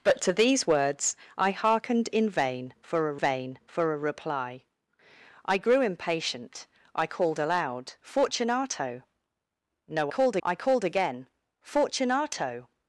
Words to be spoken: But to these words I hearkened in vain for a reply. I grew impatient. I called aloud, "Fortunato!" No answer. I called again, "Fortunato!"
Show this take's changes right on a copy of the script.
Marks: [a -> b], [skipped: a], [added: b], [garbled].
But to these words I hearkened in vain for a [added: vain for a] reply. I grew impatient. I called aloud, "Fortunato!" No [answer. -> called] I called again, "Fortunato!"